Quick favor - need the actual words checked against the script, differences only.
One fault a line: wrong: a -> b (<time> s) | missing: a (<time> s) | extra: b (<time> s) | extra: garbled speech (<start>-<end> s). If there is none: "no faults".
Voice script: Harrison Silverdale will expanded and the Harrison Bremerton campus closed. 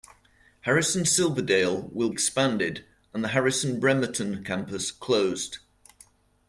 no faults